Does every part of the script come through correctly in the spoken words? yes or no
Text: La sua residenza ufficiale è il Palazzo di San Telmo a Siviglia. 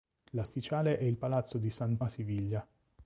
no